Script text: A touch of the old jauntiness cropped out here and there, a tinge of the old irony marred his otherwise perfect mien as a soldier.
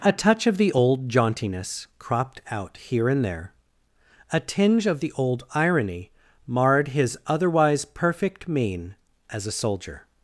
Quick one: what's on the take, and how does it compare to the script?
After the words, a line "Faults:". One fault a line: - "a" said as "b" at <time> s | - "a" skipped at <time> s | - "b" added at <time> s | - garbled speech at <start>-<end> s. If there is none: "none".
A touch of the old jauntiness cropped out here and there, a tinge of the old irony marred his otherwise perfect mien as a soldier.
Faults:
none